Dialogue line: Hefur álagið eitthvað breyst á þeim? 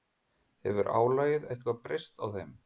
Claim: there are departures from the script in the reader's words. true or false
false